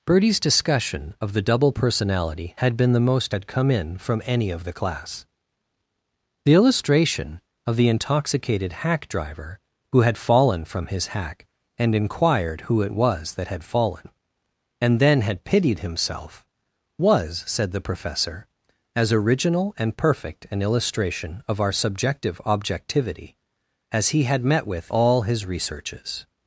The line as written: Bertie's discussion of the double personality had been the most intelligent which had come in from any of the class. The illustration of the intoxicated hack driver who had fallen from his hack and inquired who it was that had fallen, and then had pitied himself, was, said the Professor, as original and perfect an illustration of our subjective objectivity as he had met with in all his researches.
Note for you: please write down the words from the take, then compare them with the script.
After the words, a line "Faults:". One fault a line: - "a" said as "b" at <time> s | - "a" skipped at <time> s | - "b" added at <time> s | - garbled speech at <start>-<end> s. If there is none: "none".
Bertie's discussion of the double personality had been the most had come in from any of the class. The illustration of the intoxicated hack driver who had fallen from his hack and inquired who it was that had fallen, and then had pitied himself, was, said the Professor, as original and perfect an illustration of our subjective objectivity as he had met with all his researches.
Faults:
- "intelligent which" skipped at 3.4 s
- "in" skipped at 24.9 s